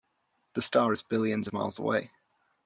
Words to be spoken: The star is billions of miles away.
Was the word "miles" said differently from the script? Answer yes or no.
no